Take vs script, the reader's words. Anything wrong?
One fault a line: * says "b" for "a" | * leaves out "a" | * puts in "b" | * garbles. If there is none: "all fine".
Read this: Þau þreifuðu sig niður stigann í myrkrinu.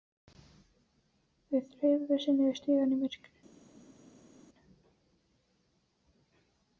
all fine